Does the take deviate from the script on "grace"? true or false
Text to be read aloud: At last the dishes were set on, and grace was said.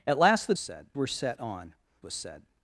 true